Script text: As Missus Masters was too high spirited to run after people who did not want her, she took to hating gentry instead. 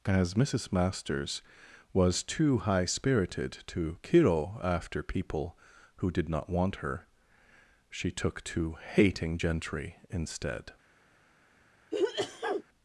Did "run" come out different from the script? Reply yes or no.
yes